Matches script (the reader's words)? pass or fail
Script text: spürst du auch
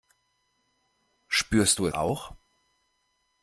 pass